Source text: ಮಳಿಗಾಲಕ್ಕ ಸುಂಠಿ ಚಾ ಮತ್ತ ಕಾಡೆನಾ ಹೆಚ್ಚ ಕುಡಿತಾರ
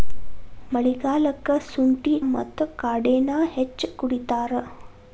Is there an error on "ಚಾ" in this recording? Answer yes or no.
yes